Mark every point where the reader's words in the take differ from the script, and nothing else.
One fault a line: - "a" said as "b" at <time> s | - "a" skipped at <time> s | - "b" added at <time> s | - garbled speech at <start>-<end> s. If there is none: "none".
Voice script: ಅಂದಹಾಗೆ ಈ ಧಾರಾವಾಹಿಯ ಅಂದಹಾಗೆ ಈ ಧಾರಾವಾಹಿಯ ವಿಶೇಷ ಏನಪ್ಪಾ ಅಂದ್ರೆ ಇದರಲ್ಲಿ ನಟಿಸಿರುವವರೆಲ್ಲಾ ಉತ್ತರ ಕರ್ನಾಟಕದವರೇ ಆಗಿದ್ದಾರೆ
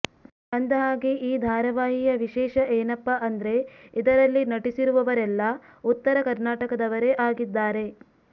- "ಅಂದಹಾಗೆ ಈ ಧಾರಾವಾಹಿಯ" skipped at 2.1 s